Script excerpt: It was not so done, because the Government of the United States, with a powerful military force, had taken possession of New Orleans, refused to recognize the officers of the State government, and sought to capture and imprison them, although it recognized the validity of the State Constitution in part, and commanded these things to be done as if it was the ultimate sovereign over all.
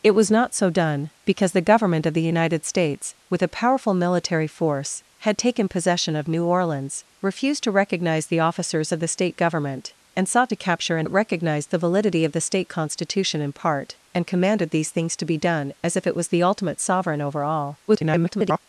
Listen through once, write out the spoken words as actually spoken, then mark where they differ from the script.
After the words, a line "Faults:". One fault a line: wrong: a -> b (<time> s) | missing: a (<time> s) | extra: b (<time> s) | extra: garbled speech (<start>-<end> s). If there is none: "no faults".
It was not so done, because the Government of the United States, with a powerful military force, had taken possession of New Orleans, refused to recognize the officers of the State government, and sought to capture and it recognized the validity of the State Constitution in part, and commanded these things to be done as if it was the ultimate sovereign over all. [garbled]
Faults:
missing: imprison them although (11.1 s)
extra: garbled speech (17.9-18.6 s)